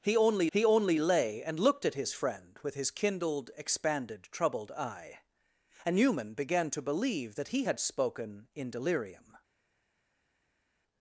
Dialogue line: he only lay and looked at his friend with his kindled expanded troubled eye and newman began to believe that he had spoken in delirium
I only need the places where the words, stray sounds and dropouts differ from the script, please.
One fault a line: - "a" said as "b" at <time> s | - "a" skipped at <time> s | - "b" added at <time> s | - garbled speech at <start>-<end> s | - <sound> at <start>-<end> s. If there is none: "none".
- "he only" added at 0.5 s